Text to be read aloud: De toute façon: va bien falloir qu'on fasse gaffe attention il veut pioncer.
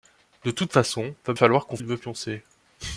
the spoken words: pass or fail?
fail